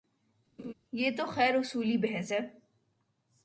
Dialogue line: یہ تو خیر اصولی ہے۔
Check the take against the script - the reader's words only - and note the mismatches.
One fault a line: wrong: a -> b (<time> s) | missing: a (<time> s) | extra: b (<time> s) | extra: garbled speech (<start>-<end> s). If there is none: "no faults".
extra: بحث (2.0 s)